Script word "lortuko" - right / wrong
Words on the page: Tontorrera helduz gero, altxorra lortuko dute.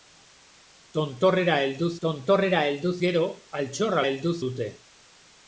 wrong